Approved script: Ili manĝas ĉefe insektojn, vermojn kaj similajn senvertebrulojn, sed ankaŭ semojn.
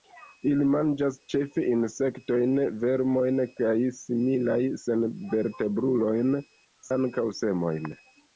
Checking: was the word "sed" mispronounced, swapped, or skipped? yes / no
yes